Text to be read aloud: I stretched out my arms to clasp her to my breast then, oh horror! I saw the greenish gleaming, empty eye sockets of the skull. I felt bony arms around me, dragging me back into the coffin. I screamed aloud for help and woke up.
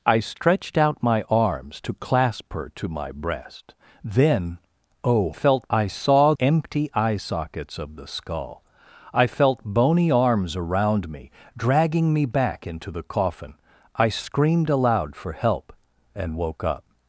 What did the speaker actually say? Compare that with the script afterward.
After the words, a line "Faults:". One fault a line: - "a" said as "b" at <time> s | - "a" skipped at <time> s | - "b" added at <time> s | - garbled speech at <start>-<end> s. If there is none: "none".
I stretched out my arms to clasp her to my breast then, oh felt! I saw empty eye sockets of the skull. I felt bony arms around me, dragging me back into the coffin. I screamed aloud for help and woke up.
Faults:
- "horror" said as "felt" at 5.3 s
- "the greenish gleaming" skipped at 6.3 s